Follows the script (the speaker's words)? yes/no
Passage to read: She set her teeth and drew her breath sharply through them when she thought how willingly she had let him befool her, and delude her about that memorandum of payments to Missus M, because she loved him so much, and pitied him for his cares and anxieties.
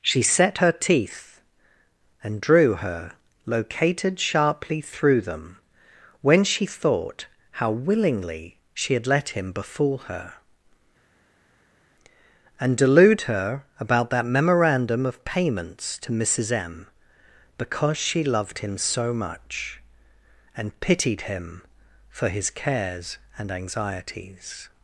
no